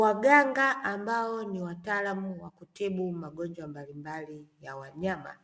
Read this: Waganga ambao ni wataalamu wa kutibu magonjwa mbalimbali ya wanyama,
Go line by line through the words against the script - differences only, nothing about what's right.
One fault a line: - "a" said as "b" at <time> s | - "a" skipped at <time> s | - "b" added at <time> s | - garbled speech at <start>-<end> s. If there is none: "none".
none